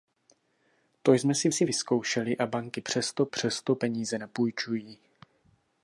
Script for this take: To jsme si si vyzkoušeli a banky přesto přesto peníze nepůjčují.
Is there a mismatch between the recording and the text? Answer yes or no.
no